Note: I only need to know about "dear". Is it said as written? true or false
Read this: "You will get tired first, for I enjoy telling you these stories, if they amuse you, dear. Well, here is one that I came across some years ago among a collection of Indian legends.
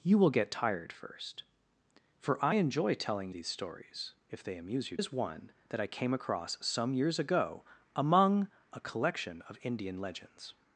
false